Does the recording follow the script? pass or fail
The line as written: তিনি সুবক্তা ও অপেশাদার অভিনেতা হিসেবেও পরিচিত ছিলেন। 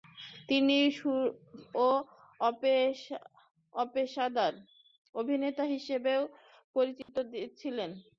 fail